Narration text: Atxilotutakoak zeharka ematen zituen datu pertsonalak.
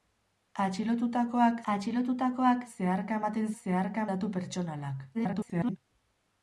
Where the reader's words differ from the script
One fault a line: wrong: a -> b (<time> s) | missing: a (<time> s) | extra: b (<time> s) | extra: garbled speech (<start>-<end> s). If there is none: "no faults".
extra: atxilotutakoak (1.7 s)
wrong: zituen -> zeharka (3.6 s)
extra: garbled speech (5.1-5.8 s)